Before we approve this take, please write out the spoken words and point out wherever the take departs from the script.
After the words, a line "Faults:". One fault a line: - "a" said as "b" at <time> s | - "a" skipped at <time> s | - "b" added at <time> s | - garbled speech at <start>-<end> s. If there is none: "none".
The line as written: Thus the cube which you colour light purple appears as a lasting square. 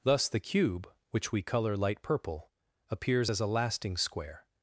Thus the cube which we colour light purple appears as a lasting square.
Faults:
- "you" said as "we" at 1.3 s